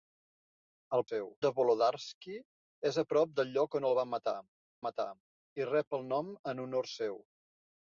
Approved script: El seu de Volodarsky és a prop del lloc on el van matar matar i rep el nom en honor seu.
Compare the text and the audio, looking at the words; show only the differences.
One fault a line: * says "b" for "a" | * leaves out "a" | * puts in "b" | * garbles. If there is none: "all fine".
all fine